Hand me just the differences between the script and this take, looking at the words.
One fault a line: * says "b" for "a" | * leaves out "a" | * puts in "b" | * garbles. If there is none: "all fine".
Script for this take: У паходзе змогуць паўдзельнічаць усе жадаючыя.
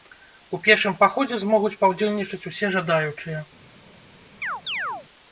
* puts in "пешым"